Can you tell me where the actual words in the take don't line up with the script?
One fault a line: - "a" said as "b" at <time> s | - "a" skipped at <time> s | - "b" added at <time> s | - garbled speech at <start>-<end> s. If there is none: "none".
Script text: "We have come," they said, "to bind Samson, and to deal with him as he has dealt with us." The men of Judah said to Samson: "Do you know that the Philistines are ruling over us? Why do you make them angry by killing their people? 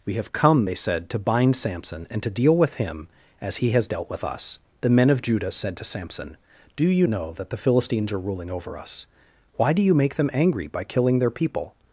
none